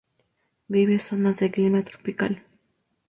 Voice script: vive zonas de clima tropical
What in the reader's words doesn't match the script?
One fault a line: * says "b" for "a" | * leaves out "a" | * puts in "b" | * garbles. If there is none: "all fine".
all fine